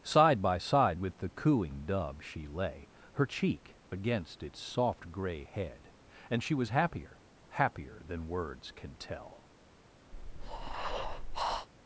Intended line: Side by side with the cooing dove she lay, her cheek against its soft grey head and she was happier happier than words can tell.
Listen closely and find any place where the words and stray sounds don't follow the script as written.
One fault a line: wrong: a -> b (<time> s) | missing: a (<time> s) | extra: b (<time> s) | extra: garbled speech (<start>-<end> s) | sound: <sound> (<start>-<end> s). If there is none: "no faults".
sound: breath (10.1-11.7 s)